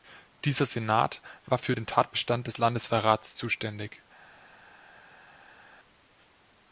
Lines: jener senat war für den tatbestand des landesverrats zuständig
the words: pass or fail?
fail